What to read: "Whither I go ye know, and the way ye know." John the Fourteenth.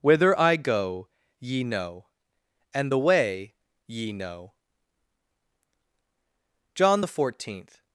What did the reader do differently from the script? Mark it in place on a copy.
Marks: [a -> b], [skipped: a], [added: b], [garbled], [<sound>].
"Whither I go ye know, and the way ye know." John the Fourteenth.